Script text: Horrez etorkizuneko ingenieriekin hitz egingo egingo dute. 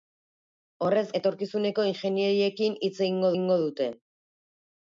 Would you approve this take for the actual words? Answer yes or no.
yes